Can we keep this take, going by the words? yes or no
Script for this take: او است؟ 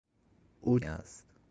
yes